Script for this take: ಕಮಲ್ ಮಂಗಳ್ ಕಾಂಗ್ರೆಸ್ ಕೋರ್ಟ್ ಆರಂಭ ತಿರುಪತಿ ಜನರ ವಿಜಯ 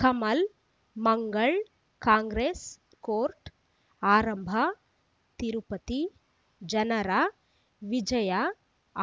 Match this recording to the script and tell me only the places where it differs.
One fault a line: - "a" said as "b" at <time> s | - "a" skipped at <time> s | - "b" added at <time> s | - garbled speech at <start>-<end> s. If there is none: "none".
none